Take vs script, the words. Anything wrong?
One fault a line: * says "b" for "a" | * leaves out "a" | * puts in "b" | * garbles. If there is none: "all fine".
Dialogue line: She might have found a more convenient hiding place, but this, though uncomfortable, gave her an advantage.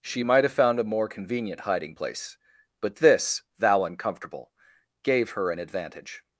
* says "thou" for "though"